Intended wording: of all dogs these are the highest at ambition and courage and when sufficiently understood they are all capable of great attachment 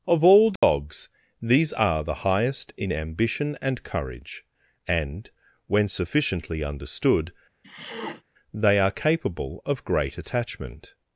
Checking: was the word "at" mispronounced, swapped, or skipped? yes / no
yes